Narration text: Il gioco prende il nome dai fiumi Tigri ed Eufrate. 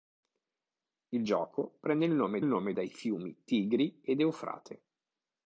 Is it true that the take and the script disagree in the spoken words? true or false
true